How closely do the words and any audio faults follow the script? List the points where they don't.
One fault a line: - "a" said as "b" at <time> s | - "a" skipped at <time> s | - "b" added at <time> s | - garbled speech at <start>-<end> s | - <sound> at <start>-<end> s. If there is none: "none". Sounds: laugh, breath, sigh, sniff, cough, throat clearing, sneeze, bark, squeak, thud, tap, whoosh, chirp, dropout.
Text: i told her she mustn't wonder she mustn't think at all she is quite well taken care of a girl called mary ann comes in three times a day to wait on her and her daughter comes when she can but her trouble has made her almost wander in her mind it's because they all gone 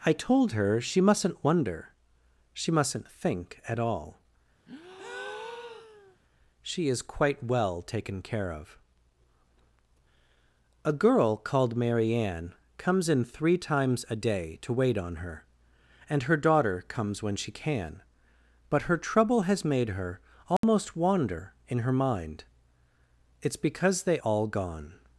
- breath at 4.7-6.2 s
- dropout at 20.6-20.6 s